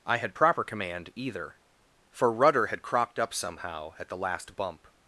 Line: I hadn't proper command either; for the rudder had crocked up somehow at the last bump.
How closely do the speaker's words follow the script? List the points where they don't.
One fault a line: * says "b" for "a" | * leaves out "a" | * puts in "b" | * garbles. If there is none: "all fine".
* says "had" for "hadn't"
* leaves out "the"